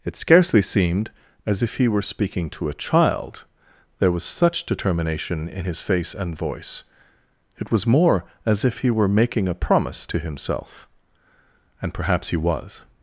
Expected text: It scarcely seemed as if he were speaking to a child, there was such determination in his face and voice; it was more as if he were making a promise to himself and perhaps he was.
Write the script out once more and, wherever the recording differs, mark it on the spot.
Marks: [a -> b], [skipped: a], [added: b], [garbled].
It scarcely seemed as if he were speaking to a child, there was such determination in his face and voice; it was more as if he were making a promise to himself and perhaps he was.